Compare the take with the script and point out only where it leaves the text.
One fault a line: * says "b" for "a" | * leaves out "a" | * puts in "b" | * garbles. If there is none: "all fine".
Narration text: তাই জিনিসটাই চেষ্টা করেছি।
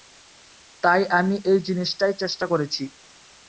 * puts in "আমি এই"